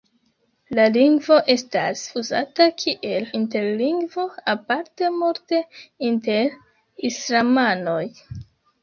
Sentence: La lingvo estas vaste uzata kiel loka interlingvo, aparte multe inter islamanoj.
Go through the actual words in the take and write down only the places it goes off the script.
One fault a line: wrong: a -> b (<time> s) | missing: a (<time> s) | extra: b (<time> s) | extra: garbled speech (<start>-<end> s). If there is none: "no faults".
missing: vaste (2.0 s)
missing: loka (3.3 s)